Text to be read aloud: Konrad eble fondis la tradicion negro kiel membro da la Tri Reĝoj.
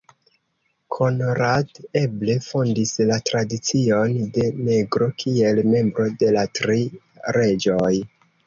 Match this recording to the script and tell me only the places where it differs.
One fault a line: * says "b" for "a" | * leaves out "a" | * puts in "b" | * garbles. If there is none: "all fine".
* puts in "de"
* says "de" for "da"